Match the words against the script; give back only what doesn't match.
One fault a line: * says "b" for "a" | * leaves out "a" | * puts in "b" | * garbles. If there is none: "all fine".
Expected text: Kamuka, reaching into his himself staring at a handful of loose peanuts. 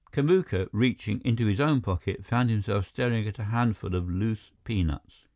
* puts in "own pocket found"